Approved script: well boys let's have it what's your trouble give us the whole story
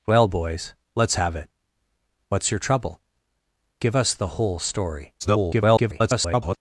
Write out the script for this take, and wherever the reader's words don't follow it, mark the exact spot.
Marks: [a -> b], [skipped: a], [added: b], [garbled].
well boys let's have it what's your trouble give us the whole story [garbled]